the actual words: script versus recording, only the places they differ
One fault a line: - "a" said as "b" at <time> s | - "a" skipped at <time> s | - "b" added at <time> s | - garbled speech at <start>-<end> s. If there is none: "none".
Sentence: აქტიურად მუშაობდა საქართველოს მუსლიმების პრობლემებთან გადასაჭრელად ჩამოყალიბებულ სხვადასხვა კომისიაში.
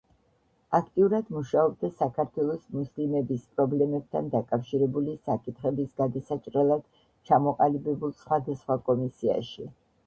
- "დაკავშირებული საკითხების" added at 4.4 s